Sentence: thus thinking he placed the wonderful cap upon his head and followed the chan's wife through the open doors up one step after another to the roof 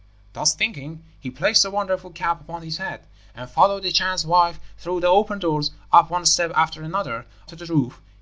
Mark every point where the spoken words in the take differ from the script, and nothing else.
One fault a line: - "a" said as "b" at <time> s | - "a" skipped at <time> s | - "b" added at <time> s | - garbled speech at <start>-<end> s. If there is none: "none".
none